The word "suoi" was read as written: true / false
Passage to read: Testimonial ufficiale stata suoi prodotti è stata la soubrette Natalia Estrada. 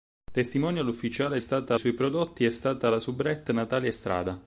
true